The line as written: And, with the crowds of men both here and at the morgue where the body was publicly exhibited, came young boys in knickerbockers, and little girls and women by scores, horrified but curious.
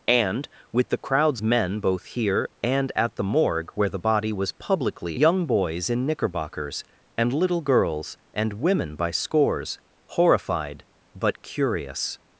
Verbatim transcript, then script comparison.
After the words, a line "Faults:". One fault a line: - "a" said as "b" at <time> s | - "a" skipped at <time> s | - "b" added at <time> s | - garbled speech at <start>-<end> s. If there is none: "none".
And, with the crowds men both here and at the morgue where the body was publicly young boys in knickerbockers, and little girls and women by scores, horrified but curious.
Faults:
- "of" skipped at 1.4 s
- "exhibited came" skipped at 5.2 s